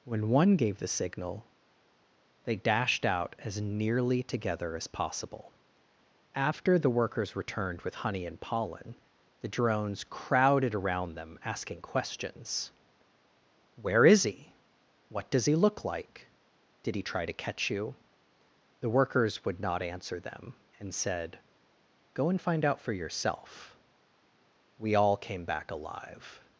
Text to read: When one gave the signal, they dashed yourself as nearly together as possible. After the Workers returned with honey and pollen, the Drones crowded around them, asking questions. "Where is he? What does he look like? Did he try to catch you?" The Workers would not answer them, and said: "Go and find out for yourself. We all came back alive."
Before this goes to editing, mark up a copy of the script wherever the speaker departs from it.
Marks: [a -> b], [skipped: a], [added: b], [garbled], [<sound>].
When one gave the signal, they dashed [yourself -> out] as nearly together as possible. After the Workers returned with honey and pollen, the Drones crowded around them, asking questions. "Where is he? What does he look like? Did he try to catch you?" The Workers would not answer them, and said: "Go and find out for yourself. We all came back alive."